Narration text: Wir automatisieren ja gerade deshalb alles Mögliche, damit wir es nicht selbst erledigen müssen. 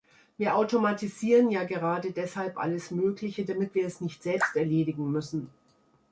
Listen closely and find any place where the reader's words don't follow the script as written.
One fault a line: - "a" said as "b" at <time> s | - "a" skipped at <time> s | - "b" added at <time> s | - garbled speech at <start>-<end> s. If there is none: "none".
none